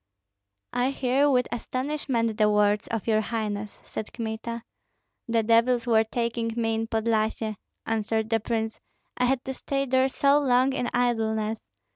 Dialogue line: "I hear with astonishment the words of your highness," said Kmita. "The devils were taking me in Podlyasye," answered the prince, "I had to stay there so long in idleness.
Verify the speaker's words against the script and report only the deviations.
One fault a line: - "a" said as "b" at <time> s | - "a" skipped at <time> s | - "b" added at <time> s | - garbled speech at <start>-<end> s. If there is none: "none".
none